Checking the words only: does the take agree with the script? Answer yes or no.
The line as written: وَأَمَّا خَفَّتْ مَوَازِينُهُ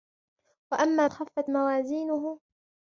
yes